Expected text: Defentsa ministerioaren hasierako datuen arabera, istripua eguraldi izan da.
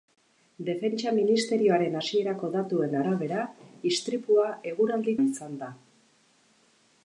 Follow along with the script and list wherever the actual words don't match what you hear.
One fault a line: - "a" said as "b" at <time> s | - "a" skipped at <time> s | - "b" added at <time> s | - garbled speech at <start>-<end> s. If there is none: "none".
none